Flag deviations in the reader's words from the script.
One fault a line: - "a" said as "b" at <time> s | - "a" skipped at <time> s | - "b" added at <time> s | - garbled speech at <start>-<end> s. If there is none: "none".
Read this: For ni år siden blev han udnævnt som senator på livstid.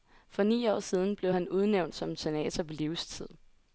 none